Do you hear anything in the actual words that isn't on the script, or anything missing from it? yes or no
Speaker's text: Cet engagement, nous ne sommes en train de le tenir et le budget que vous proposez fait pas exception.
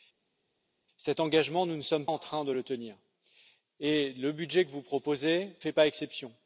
no